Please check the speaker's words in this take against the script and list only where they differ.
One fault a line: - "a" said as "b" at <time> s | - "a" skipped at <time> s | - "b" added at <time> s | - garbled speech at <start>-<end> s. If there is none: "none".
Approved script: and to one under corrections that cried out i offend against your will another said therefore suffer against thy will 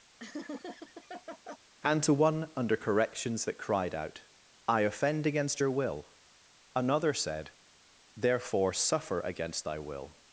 none